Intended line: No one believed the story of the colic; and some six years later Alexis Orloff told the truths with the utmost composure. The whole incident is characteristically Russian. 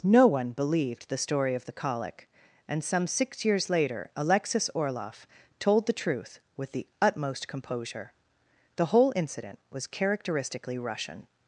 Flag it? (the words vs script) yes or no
yes